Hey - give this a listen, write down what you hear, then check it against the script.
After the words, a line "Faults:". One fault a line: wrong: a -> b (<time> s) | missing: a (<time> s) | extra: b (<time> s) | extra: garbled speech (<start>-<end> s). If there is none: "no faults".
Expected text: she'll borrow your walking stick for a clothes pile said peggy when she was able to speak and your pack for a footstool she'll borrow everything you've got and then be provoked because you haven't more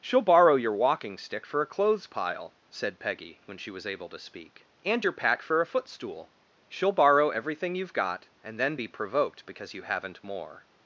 she'll borrow your walking stick for a clothes pile said peggy when she was able to speak and your pack for a footstool she'll borrow everything you've got and then be provoked because you haven't more
Faults:
no faults